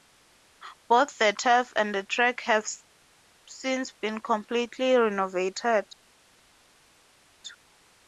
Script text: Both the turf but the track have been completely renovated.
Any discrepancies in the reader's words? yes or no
yes